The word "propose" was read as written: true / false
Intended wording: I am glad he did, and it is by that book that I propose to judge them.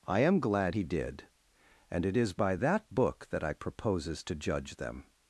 false